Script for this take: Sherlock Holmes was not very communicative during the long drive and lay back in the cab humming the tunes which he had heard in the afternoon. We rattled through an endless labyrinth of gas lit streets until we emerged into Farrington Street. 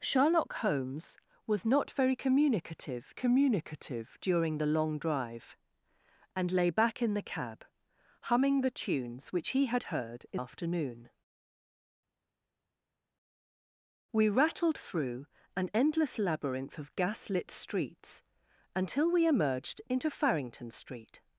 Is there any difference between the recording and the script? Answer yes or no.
yes